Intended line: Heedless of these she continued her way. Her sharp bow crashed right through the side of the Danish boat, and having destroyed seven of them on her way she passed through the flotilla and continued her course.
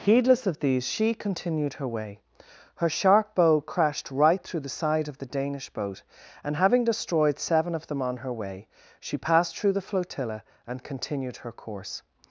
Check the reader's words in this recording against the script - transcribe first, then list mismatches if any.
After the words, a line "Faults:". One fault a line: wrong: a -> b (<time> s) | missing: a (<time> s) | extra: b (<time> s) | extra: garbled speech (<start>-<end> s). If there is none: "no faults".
Heedless of these she continued her way. Her sharp bow crashed right through the side of the Danish boat, and having destroyed seven of them on her way she passed through the flotilla and continued her course.
Faults:
no faults